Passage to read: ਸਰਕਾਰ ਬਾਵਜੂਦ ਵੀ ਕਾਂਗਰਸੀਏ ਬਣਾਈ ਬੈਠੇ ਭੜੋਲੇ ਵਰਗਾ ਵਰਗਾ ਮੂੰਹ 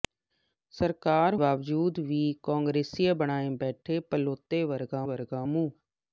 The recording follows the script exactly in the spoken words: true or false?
true